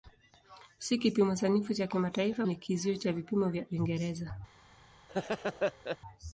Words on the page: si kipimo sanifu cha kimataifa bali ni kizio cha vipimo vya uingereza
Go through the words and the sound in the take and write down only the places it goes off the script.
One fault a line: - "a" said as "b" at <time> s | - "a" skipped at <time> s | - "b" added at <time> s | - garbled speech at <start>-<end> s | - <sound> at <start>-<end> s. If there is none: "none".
- "bali" skipped at 2.5 s
- laugh at 5.1-6.0 s